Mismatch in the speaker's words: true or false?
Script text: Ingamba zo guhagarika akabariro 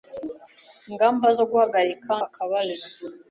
false